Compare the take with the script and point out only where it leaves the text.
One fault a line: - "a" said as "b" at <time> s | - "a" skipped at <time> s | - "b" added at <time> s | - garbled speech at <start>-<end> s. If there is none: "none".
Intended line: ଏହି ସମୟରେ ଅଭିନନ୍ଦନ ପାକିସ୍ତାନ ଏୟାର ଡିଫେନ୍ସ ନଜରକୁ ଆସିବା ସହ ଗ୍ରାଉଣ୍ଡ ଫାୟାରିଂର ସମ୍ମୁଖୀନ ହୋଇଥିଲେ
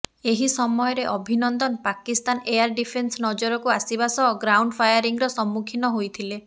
none